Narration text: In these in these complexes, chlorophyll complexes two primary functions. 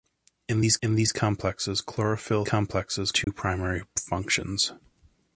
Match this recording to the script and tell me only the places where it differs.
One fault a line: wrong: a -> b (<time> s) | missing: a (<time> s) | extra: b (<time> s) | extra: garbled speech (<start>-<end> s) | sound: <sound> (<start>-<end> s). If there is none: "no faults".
sound: dropout (3.2-3.3 s)